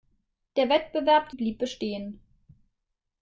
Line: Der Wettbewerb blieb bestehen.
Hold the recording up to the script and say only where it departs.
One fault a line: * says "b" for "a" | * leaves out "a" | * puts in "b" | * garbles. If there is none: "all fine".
all fine